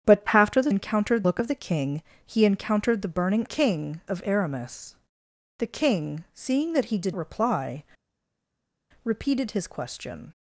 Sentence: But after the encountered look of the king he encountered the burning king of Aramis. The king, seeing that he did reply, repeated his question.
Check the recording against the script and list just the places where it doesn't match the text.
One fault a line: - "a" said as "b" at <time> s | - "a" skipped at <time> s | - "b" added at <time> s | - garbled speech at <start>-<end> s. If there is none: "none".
none